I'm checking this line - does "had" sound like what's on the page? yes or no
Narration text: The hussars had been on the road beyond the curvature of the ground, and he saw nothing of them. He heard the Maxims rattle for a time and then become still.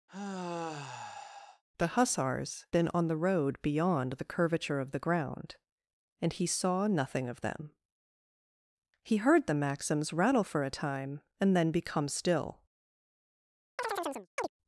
no